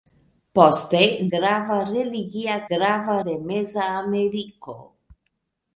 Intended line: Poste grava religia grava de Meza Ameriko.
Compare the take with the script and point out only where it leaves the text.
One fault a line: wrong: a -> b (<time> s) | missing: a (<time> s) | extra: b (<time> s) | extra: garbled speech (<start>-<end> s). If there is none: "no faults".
no faults